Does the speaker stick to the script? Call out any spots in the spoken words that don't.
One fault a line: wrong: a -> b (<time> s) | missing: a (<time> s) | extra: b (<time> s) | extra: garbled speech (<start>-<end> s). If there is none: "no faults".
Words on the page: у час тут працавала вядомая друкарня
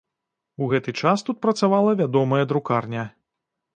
extra: гэты (0.7 s)